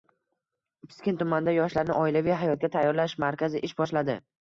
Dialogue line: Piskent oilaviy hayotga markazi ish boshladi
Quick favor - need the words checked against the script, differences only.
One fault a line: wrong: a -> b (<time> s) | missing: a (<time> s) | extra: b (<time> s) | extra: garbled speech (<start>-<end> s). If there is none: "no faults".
extra: tumanida yoshlarni (1.2 s)
extra: tayyorlash (2.8 s)